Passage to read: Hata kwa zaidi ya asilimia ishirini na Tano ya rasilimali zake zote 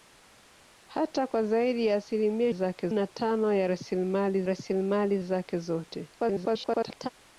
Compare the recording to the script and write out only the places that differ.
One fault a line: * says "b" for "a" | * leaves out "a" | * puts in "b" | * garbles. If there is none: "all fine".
* says "zake" for "ishirini"
* puts in "rasilimali"
* garbles